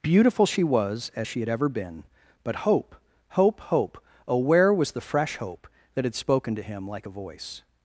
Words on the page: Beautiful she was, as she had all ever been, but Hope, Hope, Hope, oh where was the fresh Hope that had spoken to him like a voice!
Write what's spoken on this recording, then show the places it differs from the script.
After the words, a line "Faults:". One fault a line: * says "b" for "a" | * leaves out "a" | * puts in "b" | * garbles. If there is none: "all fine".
Beautiful she was, as she had ever been, but Hope, Hope, Hope, oh where was the fresh Hope that had spoken to him like a voice!
Faults:
* leaves out "all"